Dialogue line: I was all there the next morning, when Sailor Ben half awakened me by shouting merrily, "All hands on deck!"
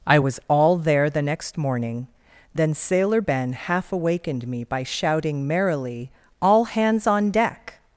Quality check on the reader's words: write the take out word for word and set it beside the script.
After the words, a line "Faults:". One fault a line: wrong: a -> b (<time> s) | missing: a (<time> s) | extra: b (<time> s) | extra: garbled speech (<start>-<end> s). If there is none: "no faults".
I was all there the next morning, then Sailor Ben half awakened me by shouting merrily, "All hands on deck!"
Faults:
wrong: when -> then (2.5 s)